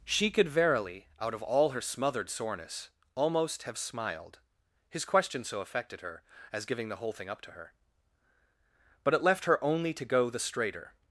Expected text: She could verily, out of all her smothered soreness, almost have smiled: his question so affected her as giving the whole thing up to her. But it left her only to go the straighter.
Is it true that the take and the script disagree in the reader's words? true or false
false